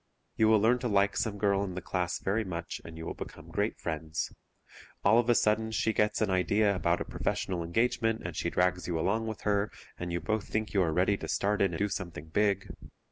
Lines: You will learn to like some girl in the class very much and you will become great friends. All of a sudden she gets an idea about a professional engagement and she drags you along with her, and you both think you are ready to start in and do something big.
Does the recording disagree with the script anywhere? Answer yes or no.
yes